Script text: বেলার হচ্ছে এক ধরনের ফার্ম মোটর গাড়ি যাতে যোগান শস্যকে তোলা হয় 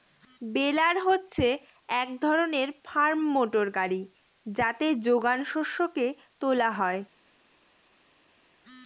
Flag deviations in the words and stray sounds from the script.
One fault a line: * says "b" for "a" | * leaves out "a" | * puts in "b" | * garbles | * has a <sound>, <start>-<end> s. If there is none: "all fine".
all fine